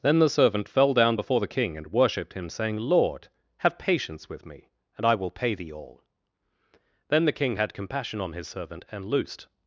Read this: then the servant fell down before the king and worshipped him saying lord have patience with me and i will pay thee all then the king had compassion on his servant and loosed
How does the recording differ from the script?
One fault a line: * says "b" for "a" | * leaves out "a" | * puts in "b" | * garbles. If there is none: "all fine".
all fine